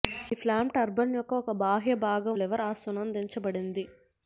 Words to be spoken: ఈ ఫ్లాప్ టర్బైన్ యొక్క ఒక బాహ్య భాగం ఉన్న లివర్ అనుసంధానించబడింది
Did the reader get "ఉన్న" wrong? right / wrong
wrong